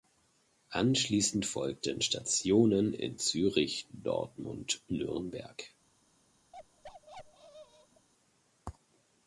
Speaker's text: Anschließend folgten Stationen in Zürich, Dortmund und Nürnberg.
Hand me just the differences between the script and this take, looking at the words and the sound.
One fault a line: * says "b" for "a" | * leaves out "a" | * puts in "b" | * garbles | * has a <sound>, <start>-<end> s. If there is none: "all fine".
* leaves out "und"
* has a bark, 6.5-8.1 s